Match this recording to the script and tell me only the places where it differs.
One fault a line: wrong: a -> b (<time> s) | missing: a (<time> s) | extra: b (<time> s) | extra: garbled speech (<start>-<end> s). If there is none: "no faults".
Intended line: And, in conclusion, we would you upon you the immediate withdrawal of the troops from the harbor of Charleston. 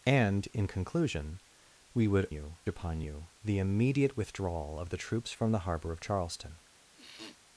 no faults